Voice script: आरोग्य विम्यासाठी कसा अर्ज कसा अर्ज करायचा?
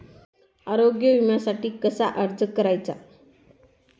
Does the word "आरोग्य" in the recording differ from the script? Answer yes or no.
no